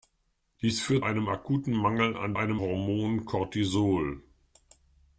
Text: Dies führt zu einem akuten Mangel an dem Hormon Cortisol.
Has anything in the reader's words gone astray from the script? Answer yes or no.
yes